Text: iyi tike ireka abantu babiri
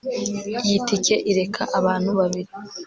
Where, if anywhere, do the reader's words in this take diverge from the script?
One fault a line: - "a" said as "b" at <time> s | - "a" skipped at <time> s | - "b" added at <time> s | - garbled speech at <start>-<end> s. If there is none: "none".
none